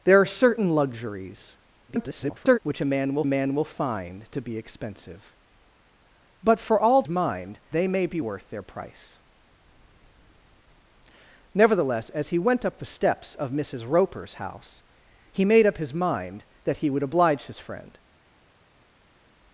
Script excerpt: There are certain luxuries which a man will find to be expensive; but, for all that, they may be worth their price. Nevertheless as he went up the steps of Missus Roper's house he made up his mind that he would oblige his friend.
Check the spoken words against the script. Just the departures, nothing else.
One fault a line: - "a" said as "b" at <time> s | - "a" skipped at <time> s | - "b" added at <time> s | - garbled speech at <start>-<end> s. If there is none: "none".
- garbled speech at 1.9-2.6 s
- "man will" added at 3.3 s
- "that" said as "mind" at 7.1 s